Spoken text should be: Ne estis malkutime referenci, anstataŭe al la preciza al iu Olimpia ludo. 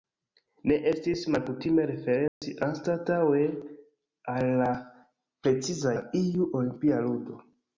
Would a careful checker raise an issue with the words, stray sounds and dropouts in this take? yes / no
yes